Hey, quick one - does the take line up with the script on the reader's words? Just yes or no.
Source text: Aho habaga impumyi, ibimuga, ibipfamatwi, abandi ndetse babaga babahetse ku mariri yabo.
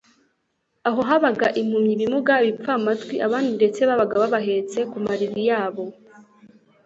yes